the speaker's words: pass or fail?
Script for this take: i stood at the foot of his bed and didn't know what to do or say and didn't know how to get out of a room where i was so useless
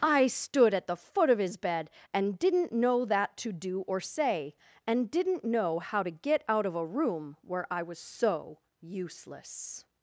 fail